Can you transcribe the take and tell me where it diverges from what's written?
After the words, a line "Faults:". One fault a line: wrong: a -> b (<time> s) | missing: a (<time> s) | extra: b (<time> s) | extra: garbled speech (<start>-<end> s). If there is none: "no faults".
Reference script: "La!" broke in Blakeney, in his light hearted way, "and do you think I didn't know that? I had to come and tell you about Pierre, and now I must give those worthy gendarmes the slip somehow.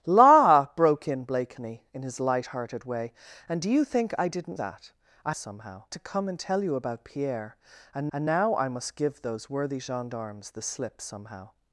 "La!" broke in Blakeney, in his light hearted way, "and do you think I didn't that? I somehow to come and tell you about Pierre, and and now I must give those worthy gendarmes the slip somehow.
Faults:
missing: know (4.6 s)
wrong: had -> somehow (5.3 s)
extra: and (8.1 s)